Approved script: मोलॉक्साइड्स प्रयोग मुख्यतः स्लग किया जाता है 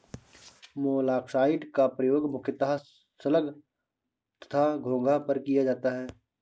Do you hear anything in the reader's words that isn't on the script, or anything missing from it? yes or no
yes